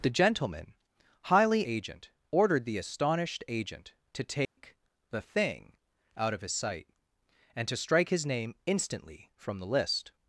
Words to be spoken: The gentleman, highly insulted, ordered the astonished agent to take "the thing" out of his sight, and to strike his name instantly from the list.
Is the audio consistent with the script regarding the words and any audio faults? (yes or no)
no